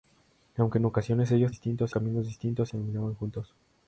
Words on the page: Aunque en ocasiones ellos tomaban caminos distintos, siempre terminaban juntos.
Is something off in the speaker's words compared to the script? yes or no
yes